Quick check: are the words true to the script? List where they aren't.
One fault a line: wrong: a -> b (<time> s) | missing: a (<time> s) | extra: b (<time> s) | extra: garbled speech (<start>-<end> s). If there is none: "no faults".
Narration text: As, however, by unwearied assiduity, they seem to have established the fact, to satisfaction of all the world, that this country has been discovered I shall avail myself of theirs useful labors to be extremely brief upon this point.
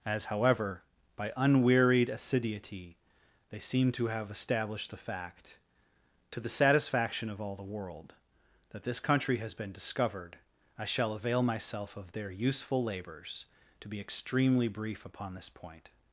extra: the (6.4 s)
wrong: theirs -> their (12.1 s)